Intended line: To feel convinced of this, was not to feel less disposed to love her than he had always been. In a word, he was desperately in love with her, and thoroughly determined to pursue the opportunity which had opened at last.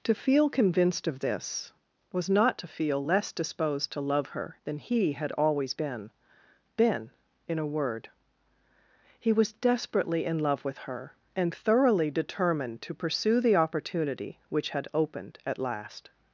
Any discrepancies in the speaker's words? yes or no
yes